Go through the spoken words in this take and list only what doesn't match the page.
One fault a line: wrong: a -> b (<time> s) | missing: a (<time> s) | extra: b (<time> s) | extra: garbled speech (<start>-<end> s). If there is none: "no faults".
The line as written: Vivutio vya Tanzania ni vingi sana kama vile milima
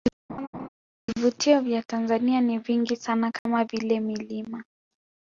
no faults